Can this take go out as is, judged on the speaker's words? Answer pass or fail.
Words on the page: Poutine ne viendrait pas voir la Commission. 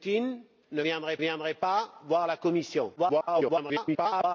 fail